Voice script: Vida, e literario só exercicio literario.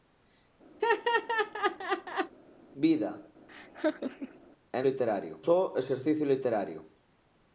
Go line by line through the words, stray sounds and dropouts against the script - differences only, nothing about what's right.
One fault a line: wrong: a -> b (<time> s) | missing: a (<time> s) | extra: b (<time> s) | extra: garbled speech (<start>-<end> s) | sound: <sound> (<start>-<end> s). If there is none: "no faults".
sound: laugh (0.8-2.3 s)
sound: laugh (3.5-4.4 s)